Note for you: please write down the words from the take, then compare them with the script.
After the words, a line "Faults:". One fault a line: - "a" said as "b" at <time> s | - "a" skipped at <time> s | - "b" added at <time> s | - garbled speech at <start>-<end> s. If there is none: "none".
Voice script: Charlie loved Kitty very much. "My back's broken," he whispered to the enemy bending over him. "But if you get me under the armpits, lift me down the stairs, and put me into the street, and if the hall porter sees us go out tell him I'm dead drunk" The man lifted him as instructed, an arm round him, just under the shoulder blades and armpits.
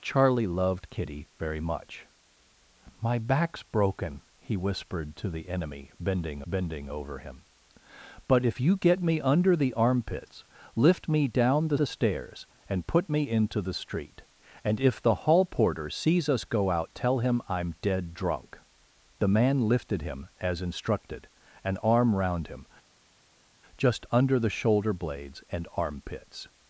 Charlie loved Kitty very much. "My back's broken," he whispered to the enemy bending bending over him. "But if you get me under the armpits, lift me down the the stairs, and put me into the street, and if the hall porter sees us go out tell him I'm dead drunk" The man lifted him as instructed, an arm round him, just under the shoulder blades and armpits.
Faults:
- "bending" added at 6.5 s
- "the" added at 11.8 s